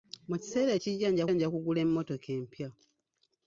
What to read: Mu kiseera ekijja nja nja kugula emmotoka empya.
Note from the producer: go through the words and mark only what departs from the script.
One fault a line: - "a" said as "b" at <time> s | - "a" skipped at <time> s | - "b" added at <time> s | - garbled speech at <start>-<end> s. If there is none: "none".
none